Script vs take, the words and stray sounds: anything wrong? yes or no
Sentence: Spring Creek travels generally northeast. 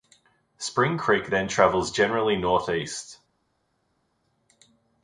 yes